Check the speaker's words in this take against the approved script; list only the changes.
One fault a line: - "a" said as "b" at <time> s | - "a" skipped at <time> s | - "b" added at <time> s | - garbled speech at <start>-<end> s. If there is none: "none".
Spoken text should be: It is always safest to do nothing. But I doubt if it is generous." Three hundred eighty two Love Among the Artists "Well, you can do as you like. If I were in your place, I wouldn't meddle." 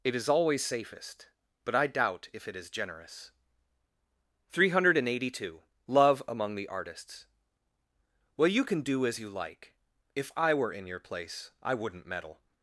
- "to do nothing" skipped at 1.3 s